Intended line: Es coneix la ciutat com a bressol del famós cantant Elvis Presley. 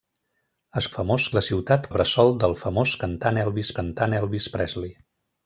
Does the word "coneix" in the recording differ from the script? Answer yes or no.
yes